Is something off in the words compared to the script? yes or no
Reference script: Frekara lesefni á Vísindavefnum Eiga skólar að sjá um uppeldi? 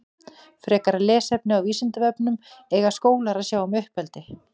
no